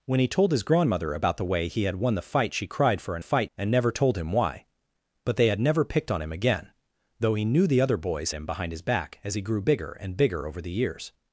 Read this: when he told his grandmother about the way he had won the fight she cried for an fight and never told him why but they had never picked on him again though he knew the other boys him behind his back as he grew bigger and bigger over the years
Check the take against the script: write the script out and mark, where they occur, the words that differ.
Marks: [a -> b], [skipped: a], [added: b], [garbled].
when he told his grandmother about the way he had won the fight she cried for an fight and never told him why but they had never picked on him again though he knew the other boys him behind his back as he grew bigger and bigger over the years